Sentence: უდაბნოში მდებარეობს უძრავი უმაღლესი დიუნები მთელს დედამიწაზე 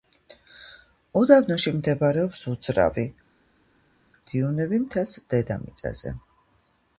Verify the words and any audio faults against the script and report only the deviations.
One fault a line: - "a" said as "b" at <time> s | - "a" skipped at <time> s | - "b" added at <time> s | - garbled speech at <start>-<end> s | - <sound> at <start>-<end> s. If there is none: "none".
- "უმაღლესი" skipped at 3.0 s